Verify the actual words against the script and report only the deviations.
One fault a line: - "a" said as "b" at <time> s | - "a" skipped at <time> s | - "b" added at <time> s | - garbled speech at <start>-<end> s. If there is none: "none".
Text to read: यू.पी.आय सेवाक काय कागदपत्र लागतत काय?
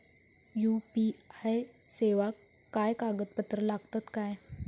none